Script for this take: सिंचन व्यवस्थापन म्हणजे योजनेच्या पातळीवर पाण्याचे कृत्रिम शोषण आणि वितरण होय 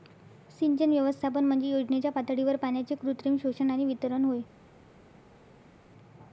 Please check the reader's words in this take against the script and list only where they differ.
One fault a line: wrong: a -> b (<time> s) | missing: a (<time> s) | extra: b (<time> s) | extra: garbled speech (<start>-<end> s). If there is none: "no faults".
no faults